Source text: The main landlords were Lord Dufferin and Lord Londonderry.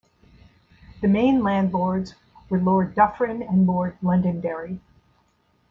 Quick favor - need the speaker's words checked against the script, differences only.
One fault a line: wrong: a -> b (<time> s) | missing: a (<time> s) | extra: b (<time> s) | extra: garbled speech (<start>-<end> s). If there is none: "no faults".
no faults